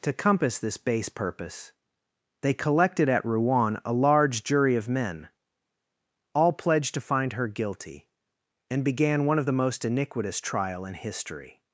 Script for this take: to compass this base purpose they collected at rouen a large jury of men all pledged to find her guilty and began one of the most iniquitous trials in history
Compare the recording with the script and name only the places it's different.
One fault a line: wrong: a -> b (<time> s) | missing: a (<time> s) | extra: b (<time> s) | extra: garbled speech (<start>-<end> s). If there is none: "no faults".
wrong: trials -> trial (10.4 s)